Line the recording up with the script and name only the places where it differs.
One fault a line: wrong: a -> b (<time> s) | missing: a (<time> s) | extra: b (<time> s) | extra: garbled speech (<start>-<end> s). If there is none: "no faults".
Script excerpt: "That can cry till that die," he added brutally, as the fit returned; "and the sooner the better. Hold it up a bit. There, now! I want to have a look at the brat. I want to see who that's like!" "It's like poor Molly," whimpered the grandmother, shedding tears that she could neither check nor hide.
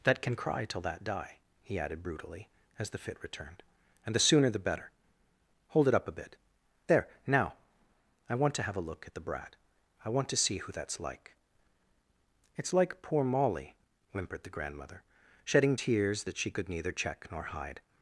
no faults